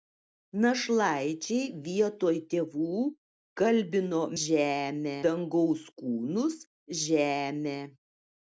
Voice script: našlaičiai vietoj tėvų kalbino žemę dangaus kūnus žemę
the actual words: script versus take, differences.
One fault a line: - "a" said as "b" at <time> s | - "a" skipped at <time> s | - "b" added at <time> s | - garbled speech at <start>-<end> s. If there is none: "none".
none